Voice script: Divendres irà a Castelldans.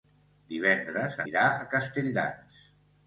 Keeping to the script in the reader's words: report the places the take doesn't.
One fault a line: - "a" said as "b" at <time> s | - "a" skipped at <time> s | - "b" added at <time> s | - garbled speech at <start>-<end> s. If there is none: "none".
none